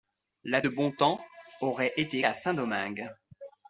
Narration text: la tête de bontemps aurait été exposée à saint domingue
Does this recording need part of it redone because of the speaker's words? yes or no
yes